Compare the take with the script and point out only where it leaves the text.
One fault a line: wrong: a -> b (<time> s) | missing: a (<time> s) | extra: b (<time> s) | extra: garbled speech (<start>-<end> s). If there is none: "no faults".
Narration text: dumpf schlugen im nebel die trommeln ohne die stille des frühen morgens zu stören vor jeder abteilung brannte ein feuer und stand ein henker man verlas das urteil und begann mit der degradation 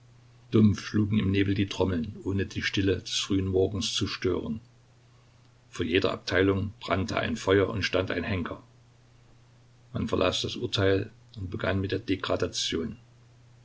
no faults